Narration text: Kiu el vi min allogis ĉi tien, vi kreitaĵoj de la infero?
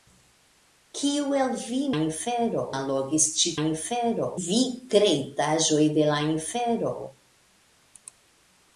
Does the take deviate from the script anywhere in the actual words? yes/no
yes